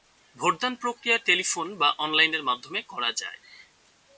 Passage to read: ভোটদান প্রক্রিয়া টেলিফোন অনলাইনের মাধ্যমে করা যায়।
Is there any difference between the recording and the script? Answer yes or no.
yes